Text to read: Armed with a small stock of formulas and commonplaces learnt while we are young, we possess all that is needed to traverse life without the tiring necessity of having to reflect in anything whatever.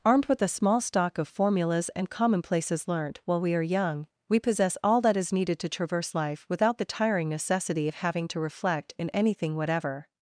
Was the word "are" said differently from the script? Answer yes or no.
no